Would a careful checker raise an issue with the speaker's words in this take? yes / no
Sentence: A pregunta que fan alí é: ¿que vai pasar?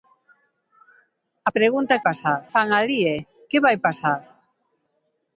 yes